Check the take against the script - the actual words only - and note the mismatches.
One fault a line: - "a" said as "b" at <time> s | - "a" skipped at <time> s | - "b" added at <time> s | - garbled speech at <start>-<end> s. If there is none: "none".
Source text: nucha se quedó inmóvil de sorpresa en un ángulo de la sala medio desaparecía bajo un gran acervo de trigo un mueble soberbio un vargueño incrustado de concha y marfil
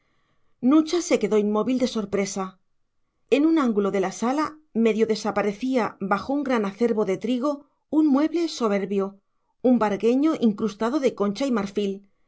none